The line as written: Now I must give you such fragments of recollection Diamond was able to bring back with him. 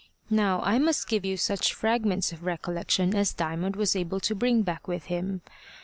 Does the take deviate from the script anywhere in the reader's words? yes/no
yes